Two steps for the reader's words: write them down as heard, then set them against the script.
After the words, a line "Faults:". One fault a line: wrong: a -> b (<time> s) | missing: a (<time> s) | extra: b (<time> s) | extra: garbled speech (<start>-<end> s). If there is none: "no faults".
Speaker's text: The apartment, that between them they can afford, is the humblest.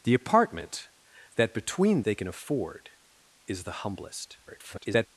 The apartment, that between they can afford, is the humblest. [garbled]
Faults:
missing: them (2.0 s)
extra: garbled speech (4.5-5.1 s)